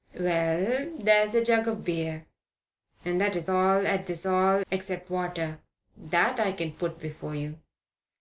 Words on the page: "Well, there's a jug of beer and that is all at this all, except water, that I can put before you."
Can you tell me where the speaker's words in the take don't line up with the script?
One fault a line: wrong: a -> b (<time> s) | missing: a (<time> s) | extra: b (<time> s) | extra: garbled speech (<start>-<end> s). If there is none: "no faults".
no faults